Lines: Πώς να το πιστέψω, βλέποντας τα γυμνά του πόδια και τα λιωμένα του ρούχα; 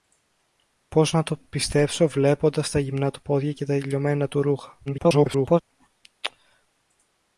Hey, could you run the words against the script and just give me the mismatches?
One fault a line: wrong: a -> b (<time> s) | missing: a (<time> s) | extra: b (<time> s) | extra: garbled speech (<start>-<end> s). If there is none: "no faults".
extra: garbled speech (4.9-5.6 s)